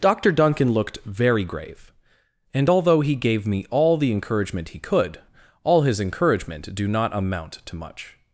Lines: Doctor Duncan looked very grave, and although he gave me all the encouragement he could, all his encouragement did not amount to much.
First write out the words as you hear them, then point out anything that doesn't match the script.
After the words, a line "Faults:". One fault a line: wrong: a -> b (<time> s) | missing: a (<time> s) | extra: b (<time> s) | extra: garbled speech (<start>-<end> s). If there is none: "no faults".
Doctor Duncan looked very grave, and although he gave me all the encouragement he could, all his encouragement do not amount to much.
Faults:
wrong: did -> do (6.7 s)